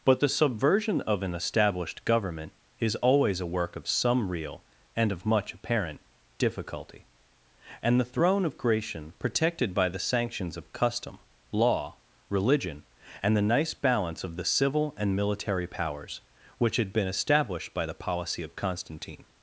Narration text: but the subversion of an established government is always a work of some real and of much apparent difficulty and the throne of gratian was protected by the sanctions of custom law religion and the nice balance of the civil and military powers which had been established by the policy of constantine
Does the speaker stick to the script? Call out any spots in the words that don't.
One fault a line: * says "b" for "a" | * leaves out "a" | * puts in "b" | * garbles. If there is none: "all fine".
* leaves out "was"